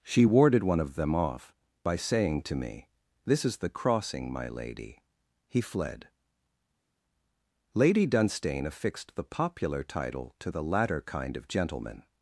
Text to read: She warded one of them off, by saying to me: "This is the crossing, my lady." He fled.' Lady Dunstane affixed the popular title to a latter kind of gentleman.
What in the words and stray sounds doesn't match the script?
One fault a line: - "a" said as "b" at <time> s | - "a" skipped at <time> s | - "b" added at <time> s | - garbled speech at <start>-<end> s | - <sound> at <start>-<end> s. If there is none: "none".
- "a" said as "the" at 10.5 s